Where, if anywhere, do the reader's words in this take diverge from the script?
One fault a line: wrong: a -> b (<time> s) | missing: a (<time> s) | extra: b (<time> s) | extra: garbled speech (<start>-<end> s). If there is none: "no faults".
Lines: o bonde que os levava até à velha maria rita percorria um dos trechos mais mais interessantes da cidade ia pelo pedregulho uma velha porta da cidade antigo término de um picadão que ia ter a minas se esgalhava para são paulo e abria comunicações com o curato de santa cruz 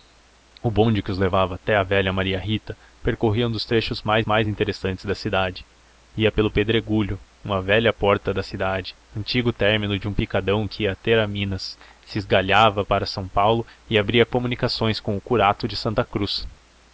no faults